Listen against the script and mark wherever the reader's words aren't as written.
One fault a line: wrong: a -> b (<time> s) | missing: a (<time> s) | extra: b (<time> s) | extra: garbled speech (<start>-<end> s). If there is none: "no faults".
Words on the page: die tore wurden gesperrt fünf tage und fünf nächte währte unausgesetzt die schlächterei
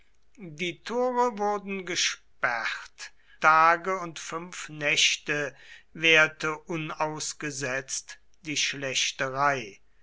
missing: fünf (3.1 s)